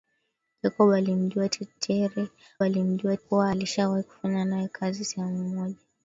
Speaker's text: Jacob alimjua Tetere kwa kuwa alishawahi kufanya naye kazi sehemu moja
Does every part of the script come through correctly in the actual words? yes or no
no